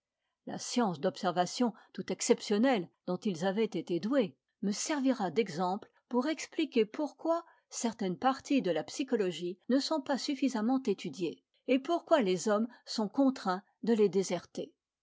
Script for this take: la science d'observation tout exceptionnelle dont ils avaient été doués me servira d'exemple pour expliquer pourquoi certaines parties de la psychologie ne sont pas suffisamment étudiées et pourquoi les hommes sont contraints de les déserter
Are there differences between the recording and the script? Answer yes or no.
no